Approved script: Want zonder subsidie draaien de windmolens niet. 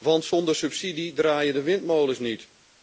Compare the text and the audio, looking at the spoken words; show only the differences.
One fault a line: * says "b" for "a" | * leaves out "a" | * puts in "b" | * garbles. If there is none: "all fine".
all fine